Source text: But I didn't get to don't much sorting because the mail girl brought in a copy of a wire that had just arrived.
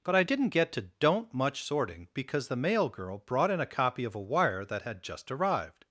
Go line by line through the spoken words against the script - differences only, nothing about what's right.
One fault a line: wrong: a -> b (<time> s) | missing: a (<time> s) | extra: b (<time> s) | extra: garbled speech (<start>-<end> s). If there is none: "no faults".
no faults